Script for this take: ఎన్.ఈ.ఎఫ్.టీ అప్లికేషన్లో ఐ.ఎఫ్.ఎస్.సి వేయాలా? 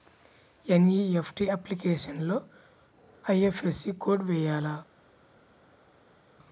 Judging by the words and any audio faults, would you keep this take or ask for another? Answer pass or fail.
fail